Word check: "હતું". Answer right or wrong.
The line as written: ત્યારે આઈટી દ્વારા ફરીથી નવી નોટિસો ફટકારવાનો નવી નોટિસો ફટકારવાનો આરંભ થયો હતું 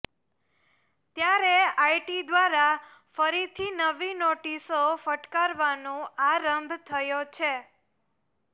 wrong